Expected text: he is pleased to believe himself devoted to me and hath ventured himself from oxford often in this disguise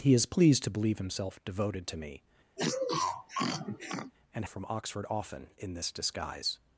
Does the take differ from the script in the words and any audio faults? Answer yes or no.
yes